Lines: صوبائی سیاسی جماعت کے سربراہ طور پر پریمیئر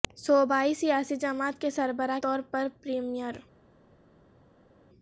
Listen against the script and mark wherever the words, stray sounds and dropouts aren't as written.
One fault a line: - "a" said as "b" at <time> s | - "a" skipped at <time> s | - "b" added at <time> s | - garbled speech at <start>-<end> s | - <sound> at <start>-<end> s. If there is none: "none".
none